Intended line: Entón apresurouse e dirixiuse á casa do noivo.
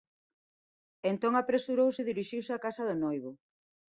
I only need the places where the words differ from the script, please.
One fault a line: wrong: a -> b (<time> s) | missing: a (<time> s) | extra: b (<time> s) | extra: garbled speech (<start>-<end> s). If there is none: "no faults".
no faults